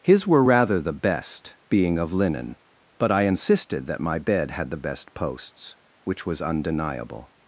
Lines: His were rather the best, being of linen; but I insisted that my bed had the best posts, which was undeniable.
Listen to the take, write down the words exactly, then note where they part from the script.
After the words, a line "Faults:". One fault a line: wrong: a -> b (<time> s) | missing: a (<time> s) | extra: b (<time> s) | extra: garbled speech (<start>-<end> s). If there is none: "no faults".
His were rather the best, being of linen; but I insisted that my bed had the best posts, which was undeniable.
Faults:
no faults